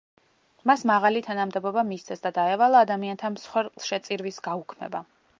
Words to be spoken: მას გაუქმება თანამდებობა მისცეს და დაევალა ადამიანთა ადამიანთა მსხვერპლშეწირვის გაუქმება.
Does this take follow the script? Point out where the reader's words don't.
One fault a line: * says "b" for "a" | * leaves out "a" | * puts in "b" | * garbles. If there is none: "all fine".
* says "მაღალი" for "გაუქმება"
* leaves out "ადამიანთა"